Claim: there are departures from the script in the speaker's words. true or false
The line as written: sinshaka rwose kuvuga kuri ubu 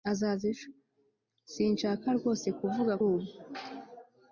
true